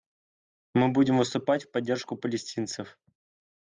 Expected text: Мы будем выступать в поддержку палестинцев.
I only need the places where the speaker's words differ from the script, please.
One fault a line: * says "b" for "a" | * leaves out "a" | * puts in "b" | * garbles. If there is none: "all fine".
all fine